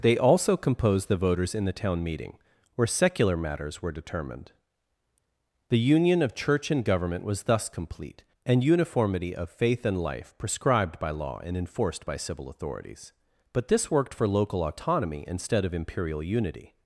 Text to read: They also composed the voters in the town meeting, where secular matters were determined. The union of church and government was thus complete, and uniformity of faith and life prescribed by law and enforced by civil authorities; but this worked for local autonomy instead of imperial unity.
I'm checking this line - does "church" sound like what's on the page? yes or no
yes